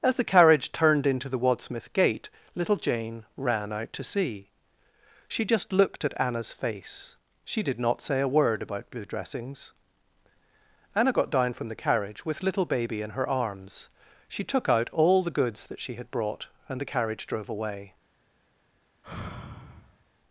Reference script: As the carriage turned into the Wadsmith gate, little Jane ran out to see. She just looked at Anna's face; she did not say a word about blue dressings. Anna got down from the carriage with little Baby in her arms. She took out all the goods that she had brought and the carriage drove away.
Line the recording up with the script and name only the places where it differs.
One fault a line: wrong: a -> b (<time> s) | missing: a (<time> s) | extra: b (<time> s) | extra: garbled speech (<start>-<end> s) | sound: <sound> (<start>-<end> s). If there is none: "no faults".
sound: sigh (19.0-20.0 s)